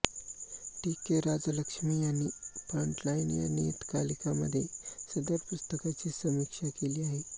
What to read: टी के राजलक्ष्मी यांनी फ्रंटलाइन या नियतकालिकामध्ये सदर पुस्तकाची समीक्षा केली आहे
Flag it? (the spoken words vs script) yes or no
no